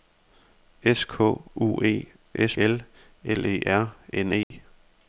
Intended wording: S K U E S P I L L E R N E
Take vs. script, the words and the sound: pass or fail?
fail